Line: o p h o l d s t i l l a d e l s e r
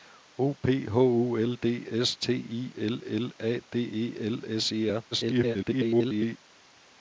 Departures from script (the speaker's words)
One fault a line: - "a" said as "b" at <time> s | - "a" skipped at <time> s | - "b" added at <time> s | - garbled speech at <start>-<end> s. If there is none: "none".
- garbled speech at 5.1-6.4 s